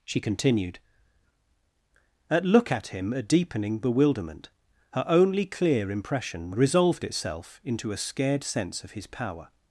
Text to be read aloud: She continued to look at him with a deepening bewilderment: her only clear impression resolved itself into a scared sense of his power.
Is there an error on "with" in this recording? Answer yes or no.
yes